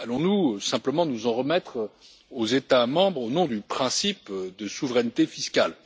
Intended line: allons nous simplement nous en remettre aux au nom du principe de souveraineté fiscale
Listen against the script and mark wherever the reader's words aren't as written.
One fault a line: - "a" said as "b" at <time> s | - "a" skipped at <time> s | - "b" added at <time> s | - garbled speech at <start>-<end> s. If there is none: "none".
- "états membres" added at 2.5 s